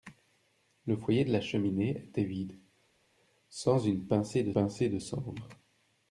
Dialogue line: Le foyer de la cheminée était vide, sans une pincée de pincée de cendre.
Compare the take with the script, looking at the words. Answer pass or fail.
pass